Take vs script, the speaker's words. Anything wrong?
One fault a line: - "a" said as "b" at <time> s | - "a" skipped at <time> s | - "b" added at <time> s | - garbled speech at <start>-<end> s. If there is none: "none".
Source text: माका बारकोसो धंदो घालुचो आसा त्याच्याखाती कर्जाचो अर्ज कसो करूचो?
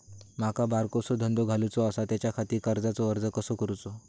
none